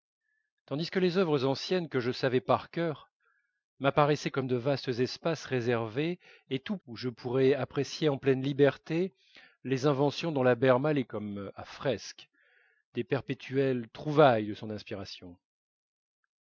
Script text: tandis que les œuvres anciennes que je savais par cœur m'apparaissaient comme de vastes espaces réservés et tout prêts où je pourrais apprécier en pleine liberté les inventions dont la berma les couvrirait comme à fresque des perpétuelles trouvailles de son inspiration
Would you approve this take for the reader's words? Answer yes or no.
no